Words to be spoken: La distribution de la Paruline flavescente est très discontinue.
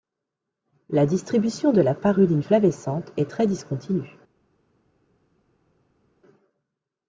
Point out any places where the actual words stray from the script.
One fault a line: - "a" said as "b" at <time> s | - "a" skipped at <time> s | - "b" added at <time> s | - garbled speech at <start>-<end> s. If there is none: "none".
none